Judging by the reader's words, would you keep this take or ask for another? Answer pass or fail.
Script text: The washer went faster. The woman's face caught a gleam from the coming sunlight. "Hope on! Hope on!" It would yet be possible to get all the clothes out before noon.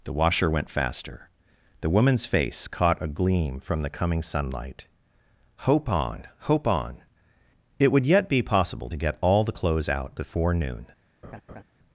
pass